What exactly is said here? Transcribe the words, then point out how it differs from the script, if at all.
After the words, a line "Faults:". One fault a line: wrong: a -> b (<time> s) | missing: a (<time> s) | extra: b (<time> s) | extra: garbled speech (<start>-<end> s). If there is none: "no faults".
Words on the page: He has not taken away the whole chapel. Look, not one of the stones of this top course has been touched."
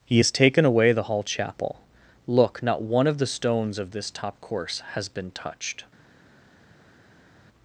He has taken away the hall chapel. Look, not one of the stones of this top course has been touched."
Faults:
missing: not (0.3 s)
wrong: whole -> hall (1.0 s)